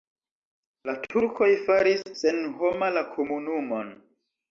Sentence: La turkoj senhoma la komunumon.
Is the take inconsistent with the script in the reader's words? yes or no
yes